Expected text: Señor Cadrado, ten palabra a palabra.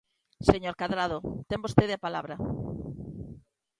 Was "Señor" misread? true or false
false